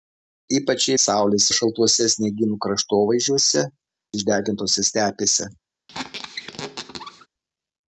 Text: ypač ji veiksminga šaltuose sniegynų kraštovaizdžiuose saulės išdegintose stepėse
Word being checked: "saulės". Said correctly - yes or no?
no